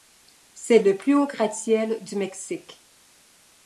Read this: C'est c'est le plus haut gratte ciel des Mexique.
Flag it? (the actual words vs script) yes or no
yes